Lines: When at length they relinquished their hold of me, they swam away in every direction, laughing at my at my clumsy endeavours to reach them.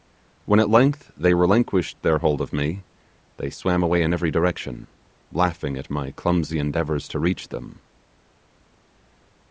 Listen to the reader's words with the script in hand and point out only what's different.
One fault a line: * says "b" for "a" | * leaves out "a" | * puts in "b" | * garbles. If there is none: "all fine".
* leaves out "at my"